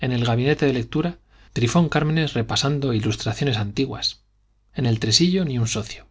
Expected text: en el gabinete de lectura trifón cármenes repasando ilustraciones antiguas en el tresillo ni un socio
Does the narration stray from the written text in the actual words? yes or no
no